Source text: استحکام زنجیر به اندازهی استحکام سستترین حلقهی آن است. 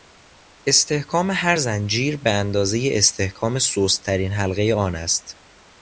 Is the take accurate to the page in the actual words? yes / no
no